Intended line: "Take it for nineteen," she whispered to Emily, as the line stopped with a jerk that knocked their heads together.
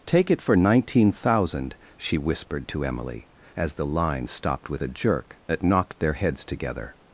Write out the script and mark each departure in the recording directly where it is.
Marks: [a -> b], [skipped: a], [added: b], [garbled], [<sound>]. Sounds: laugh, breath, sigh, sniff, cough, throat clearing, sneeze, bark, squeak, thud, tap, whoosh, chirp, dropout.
"Take it for nineteen," [added: thousand] she whispered to Emily, as the line stopped with a jerk that knocked their heads together.